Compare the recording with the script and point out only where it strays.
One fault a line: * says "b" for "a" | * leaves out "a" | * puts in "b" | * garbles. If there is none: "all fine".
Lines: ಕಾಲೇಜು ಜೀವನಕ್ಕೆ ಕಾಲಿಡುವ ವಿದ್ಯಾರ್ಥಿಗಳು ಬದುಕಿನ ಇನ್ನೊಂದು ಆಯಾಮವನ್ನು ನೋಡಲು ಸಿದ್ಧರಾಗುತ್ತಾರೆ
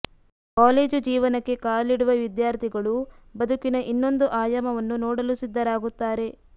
all fine